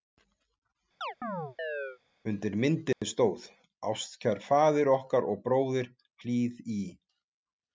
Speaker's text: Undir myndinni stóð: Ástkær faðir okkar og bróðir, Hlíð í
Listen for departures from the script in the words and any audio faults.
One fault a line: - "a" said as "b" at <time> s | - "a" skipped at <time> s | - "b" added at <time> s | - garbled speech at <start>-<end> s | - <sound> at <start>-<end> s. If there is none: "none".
- chirp at 1.0-2.0 s
- dropout at 2.9-3.0 s